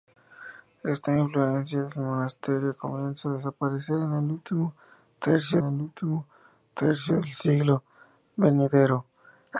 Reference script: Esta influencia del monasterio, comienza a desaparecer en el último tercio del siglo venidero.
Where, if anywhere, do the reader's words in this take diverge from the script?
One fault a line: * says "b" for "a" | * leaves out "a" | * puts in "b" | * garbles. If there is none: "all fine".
* puts in "el último tercio"